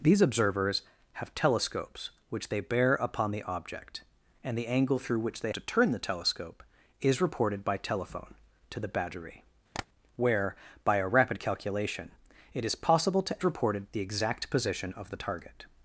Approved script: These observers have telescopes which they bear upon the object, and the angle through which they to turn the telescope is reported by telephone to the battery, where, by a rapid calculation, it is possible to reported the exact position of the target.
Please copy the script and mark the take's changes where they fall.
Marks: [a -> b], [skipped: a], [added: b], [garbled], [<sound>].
These observers have telescopes which they bear upon the object, and the angle through which they to turn the telescope is reported by telephone to the battery, [tap] where, by a rapid calculation, it is possible to reported the exact position of the target.